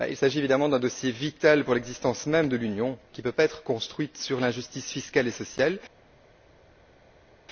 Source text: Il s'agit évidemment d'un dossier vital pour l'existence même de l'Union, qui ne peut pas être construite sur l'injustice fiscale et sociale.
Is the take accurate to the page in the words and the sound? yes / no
yes